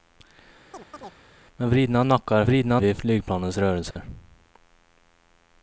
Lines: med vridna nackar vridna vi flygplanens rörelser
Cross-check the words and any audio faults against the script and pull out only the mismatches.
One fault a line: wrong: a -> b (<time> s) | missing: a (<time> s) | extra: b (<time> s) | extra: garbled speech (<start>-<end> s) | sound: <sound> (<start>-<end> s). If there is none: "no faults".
sound: chirp (0.7-1.2 s)
sound: dropout (3.9-4.0 s)